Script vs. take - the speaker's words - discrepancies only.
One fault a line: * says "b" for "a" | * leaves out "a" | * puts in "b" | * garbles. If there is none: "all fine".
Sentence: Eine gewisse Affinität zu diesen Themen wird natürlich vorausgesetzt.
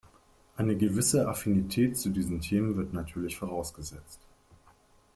all fine